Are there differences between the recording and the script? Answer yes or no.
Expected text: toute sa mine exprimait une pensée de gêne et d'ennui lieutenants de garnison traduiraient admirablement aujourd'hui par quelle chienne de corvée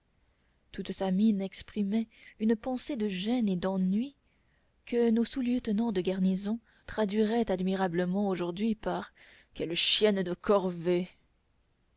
yes